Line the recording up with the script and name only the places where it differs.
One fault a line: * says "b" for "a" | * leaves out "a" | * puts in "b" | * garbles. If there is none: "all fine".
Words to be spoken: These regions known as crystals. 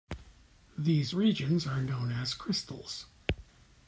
* puts in "are"